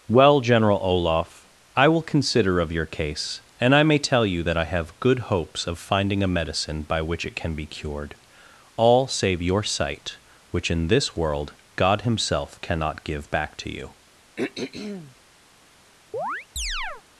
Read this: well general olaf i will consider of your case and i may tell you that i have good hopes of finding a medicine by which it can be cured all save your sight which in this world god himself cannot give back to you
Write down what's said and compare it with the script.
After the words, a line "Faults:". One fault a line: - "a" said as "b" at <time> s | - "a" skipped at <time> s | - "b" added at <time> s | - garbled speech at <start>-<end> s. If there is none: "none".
well general olaf i will consider of your case and i may tell you that i have good hopes of finding a medicine by which it can be cured all save your sight which in this world god himself cannot give back to you
Faults:
none